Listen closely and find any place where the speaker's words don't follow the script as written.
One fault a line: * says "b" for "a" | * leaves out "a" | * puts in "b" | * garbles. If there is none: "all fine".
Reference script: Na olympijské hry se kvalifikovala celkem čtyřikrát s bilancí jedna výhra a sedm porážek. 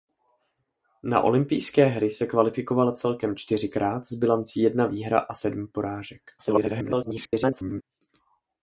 * garbles